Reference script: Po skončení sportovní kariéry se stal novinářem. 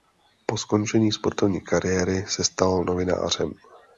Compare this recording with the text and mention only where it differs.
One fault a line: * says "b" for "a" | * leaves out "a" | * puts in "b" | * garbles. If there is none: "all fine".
all fine